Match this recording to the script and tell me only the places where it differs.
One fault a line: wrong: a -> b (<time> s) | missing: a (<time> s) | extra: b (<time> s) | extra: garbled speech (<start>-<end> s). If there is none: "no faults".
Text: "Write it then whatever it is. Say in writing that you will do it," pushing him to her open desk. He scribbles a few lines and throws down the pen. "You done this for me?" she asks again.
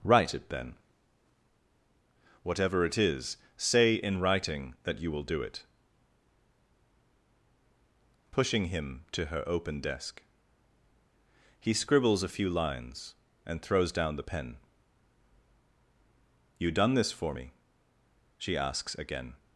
no faults